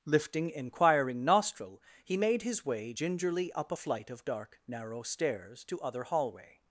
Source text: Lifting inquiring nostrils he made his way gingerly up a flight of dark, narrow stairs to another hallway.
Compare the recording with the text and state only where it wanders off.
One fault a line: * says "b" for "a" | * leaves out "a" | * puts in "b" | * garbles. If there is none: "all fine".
* says "nostril" for "nostrils"
* says "other" for "another"